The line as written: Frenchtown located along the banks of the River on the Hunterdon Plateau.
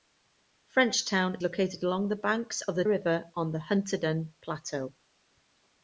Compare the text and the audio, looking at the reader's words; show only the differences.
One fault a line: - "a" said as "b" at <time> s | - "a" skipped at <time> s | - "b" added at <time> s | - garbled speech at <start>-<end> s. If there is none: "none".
none